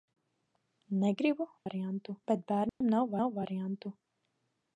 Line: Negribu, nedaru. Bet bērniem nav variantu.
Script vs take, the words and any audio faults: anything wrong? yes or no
yes